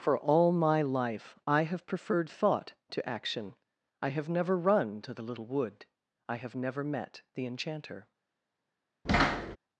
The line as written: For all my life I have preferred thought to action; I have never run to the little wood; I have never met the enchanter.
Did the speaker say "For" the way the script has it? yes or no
yes